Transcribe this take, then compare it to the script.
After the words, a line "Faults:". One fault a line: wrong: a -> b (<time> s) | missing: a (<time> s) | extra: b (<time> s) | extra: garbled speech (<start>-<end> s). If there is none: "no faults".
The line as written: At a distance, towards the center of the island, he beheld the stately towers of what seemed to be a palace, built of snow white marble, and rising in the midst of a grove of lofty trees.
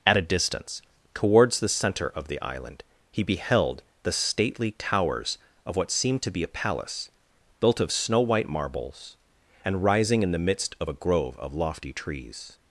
At a distance, towards the center of the island, he beheld the stately towers of what seemed to be a palace, built of snow white marbles, and rising in the midst of a grove of lofty trees.
Faults:
wrong: marble -> marbles (8.5 s)